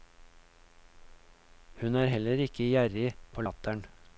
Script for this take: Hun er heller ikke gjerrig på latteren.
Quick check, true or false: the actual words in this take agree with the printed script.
true